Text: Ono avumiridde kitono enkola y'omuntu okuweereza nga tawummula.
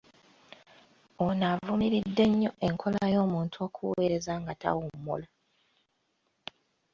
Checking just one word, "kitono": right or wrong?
wrong